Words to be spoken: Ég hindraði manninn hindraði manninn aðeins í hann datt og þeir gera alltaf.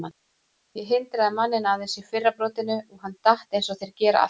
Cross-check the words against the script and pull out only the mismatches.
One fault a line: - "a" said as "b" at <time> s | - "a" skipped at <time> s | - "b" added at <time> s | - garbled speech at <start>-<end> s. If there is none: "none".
- "hindraði manninn aðeins í" said as "aðeins í fyrra brotinu og" at 1.7 s
- "eins" added at 3.6 s